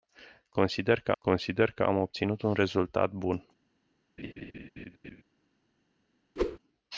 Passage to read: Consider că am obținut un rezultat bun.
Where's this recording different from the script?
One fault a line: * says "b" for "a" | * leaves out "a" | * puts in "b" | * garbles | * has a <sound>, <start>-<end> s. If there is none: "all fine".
* puts in "consider că"
* has a laugh, 4.2-5.2 s
* has a whoosh, 6.4-6.6 s